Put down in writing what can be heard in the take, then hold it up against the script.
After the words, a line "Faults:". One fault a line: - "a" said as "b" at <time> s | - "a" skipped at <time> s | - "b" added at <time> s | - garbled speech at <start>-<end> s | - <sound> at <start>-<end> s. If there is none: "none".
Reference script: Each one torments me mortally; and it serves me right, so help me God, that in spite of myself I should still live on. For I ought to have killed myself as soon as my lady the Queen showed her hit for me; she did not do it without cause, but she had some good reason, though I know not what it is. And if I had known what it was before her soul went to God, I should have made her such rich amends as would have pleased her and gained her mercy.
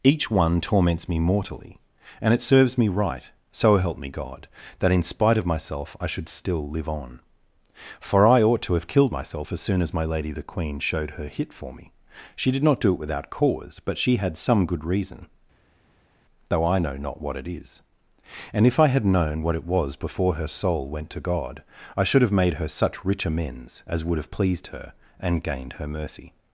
Each one torments me mortally; and it serves me right, so help me God, that in spite of myself I should still live on. For I ought to have killed myself as soon as my lady the Queen showed her hit for me; she did not do it without cause, but she had some good reason, though I know not what it is. And if I had known what it was before her soul went to God, I should have made her such rich amends as would have pleased her and gained her mercy.
Faults:
none